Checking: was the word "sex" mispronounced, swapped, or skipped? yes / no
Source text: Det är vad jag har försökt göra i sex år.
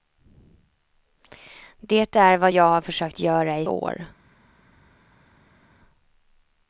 yes